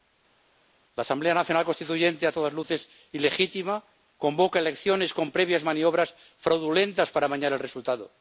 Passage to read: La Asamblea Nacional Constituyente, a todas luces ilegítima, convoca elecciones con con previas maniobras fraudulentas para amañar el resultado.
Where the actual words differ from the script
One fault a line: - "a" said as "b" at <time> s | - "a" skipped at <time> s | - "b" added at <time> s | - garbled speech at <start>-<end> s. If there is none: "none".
- "con" skipped at 5.3 s